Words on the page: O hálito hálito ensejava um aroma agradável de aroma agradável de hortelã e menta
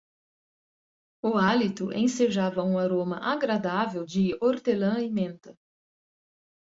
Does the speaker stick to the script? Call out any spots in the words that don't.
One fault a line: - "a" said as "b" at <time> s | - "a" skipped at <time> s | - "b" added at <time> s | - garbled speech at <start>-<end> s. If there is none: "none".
- "hálito" skipped at 1.9 s
- "aroma agradável de" skipped at 4.4 s